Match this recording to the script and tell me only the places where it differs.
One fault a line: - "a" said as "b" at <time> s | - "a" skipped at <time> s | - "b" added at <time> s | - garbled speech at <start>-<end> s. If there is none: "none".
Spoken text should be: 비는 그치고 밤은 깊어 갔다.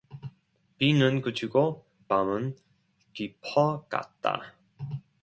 none